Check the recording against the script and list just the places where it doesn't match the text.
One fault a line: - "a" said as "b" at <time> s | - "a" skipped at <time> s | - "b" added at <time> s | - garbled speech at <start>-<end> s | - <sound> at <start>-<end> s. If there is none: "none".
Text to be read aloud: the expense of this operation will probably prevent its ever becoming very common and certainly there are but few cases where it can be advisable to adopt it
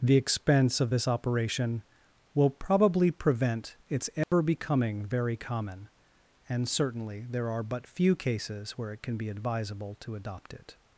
- dropout at 4.2-4.3 s